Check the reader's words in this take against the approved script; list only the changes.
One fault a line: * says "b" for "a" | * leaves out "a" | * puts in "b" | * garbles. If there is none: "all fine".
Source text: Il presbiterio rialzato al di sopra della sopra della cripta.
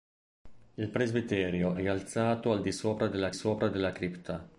all fine